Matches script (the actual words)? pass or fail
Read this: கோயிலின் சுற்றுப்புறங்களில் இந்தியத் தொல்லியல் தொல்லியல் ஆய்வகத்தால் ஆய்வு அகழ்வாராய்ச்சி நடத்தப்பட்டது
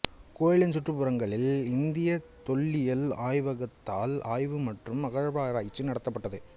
fail